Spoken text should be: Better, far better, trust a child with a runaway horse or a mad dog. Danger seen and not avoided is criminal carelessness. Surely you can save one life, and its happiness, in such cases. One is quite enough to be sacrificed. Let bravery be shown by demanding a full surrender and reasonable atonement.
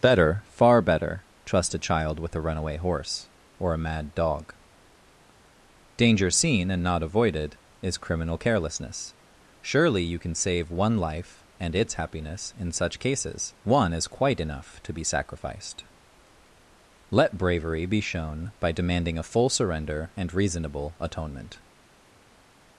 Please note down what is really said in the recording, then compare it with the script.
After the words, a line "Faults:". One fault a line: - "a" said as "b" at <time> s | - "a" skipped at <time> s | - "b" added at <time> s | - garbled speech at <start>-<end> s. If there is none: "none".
Better, far better, trust a child with a runaway horse or a mad dog. Danger seen and not avoided is criminal carelessness. Surely you can save one life, and its happiness, in such cases. One is quite enough to be sacrificed. Let bravery be shown by demanding a full surrender and reasonable atonement.
Faults:
none